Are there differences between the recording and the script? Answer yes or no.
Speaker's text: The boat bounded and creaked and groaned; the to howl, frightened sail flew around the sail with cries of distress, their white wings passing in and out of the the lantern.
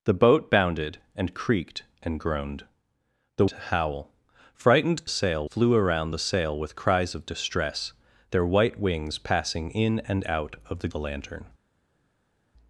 no